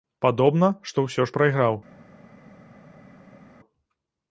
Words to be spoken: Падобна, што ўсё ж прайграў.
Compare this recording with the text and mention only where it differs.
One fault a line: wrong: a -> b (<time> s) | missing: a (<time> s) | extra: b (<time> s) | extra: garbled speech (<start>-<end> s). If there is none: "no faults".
no faults